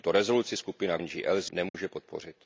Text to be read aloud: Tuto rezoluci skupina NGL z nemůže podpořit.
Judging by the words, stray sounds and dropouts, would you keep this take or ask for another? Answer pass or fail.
fail